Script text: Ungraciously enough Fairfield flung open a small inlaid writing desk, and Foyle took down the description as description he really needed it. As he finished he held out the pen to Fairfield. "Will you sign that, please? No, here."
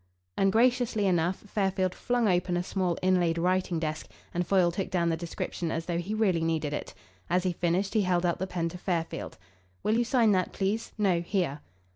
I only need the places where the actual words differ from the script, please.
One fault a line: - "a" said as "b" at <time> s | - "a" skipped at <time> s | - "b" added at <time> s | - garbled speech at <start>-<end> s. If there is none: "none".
- "description" said as "though" at 5.9 s